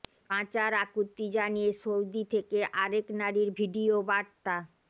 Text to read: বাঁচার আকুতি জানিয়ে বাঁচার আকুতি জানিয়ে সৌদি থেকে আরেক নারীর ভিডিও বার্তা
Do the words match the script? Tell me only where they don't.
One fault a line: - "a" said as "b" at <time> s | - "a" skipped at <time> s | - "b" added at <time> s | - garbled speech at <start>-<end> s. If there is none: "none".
- "বাঁচার আকুতি জানিয়ে" skipped at 1.7 s